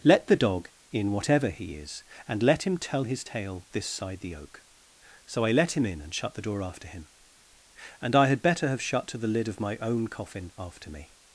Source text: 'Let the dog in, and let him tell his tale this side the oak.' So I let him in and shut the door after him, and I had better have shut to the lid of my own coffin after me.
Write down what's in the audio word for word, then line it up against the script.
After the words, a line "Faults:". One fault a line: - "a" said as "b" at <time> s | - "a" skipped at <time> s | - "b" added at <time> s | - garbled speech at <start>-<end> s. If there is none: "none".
'Let the dog in, whatever he is, and let him tell his tale this side the oak.' So I let him in and shut the door after him, and I had better have shut to the lid of my own coffin after me.
Faults:
- "whatever he is" added at 1.1 s